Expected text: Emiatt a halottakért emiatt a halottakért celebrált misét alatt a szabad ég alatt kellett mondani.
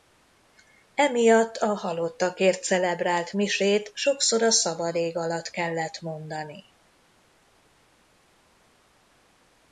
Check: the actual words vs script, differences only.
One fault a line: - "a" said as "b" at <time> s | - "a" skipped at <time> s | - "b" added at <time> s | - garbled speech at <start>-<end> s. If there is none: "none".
- "emiatt a halottakért" skipped at 2.6 s
- "alatt" said as "sokszor" at 3.9 s